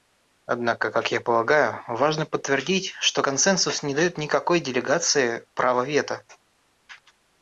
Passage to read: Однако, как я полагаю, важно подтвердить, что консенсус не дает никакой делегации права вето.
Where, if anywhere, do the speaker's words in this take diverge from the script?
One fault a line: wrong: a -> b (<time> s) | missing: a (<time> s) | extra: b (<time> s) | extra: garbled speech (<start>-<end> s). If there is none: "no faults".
no faults